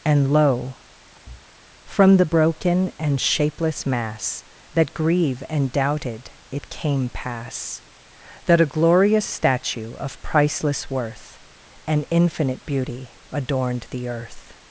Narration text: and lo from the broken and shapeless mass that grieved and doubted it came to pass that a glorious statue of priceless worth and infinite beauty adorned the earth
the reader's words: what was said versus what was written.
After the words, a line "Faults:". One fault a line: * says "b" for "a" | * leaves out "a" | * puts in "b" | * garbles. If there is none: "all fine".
and lo from the broken and shapeless mass that grieve and doubted it came pass that a glorious statue of priceless worth and infinite beauty adorned the earth
Faults:
* says "grieve" for "grieved"
* leaves out "to"